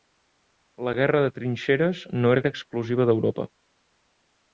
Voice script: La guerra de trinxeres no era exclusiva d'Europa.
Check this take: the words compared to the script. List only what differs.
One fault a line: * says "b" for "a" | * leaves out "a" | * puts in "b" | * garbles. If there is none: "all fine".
* puts in "era"